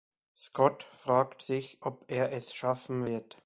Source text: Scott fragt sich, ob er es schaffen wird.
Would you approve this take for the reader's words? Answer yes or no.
yes